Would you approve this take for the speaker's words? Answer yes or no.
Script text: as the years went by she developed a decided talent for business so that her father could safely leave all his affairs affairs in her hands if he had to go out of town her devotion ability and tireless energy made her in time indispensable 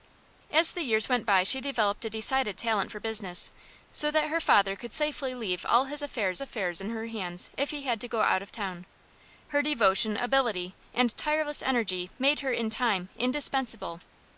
yes